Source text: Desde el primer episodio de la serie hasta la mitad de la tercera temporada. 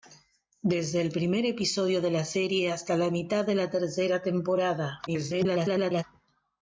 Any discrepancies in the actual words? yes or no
yes